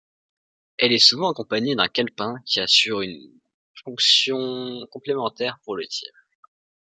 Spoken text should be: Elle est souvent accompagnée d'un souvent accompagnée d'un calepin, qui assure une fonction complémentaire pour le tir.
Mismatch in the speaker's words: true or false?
true